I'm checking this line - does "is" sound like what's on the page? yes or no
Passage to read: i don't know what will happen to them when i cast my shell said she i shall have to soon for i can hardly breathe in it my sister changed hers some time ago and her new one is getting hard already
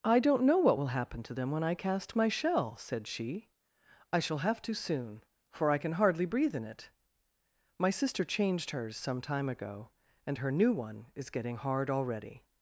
yes